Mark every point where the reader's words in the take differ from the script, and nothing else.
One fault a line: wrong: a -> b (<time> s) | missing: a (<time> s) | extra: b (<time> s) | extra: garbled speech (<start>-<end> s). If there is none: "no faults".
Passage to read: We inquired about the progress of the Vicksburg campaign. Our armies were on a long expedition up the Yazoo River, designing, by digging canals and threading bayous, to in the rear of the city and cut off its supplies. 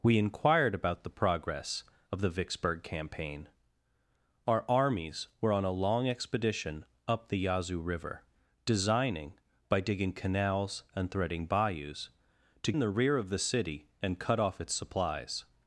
no faults